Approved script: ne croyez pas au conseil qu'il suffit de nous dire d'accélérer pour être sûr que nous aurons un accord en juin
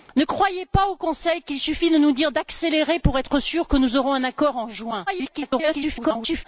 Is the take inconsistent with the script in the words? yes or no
yes